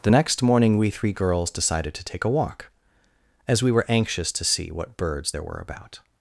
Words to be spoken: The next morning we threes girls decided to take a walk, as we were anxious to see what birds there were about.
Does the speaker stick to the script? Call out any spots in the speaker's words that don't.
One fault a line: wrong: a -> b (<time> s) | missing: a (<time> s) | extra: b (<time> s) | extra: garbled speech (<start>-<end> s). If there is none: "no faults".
wrong: threes -> three (0.9 s)